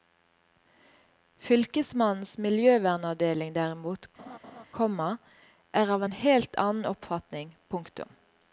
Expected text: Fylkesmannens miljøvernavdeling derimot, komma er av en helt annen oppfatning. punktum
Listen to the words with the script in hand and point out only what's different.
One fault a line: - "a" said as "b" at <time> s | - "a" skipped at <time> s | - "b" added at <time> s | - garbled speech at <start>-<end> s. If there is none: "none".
none